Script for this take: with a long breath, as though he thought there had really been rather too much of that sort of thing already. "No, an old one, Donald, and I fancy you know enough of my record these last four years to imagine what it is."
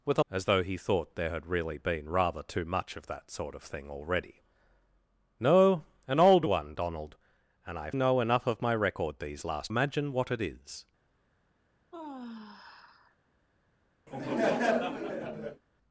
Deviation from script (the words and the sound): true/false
true